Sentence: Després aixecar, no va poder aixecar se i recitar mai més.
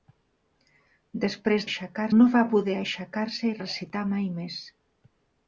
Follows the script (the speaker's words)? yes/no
yes